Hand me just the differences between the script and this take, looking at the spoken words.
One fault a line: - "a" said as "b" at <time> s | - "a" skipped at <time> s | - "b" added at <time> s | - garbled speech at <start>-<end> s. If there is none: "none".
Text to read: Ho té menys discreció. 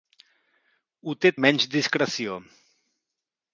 none